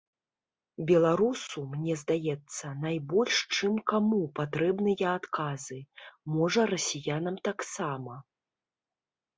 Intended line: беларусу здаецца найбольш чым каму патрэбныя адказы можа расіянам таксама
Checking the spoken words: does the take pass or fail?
fail